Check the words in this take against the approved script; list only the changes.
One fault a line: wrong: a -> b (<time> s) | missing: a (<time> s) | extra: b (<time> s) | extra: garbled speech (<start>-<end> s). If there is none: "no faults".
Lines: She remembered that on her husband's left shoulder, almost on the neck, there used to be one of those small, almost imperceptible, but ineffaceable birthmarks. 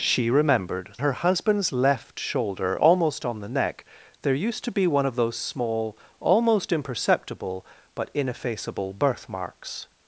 missing: that on (0.9 s)